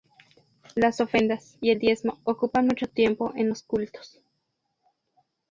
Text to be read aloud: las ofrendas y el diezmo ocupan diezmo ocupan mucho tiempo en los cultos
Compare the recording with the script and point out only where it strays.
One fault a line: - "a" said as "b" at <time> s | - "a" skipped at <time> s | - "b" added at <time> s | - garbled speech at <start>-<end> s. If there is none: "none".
- "diezmo ocupan" skipped at 2.7 s